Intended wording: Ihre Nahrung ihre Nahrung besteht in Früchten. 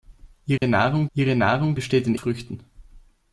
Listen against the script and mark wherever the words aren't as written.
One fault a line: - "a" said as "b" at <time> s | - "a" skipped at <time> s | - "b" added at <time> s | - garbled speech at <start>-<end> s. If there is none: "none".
none